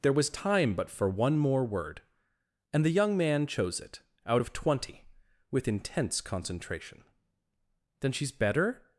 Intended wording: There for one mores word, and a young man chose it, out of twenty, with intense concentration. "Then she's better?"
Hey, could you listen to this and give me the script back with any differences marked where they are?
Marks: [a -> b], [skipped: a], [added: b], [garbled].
There [added: was time but] for one [mores -> more] word, and [a -> the] young man chose it, out of twenty, with intense concentration. "Then she's better?"